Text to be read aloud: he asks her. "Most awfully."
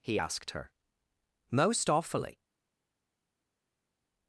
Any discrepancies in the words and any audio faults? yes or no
yes